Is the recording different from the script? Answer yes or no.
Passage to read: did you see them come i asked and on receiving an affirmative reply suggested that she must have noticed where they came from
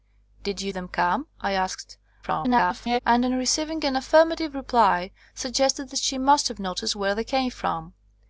yes